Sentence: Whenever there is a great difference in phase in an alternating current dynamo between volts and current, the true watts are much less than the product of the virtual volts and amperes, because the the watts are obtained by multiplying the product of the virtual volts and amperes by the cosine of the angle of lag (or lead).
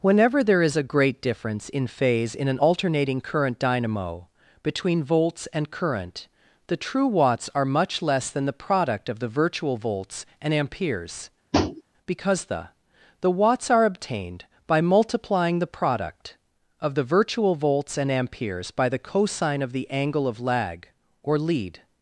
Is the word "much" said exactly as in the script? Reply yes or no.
yes